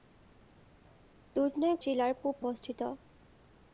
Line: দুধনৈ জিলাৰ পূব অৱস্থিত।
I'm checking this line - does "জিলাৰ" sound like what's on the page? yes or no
yes